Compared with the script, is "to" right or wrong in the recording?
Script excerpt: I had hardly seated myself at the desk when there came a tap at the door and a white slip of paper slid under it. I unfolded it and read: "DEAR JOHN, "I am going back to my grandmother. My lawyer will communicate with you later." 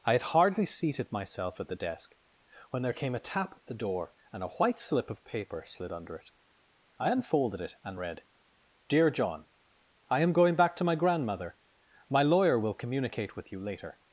right